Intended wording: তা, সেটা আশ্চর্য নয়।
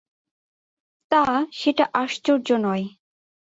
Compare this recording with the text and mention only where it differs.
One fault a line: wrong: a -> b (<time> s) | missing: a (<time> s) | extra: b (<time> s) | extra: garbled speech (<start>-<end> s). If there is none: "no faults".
no faults